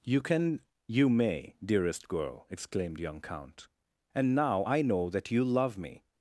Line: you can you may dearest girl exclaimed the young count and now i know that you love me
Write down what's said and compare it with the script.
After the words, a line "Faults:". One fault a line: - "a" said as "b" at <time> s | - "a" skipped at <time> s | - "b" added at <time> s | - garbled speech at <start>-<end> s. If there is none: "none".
you can you may dearest girl exclaimed young count and now i know that you love me
Faults:
- "the" skipped at 3.0 s